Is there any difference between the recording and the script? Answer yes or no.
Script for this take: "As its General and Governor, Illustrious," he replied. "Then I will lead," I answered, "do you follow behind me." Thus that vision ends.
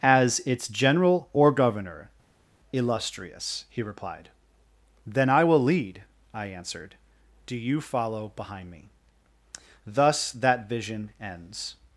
yes